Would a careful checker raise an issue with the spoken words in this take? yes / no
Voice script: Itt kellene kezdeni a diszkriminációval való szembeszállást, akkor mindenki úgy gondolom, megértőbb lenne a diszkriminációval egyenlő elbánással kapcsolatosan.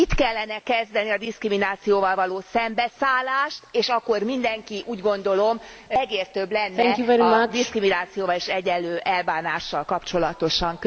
yes